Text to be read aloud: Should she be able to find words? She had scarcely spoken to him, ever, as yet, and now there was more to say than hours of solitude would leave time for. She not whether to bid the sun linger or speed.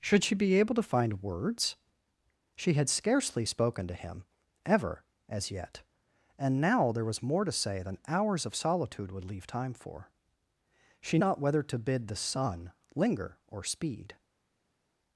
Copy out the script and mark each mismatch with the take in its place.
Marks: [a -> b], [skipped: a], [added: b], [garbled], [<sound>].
Should she be able to find words? She had scarcely spoken to him, ever, as yet, and now there was more to say than hours of solitude would leave time for. She not whether to bid the sun linger or speed.